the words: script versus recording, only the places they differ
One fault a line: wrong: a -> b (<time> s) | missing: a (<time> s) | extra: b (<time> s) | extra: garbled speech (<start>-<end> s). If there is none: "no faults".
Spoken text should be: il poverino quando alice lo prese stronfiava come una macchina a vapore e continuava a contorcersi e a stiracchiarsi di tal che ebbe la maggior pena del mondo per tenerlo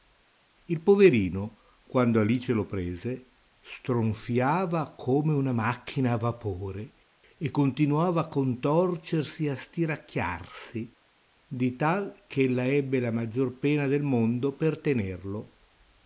extra: ella (12.4 s)